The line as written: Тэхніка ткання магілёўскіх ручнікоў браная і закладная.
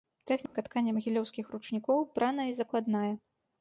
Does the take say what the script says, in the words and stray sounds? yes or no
no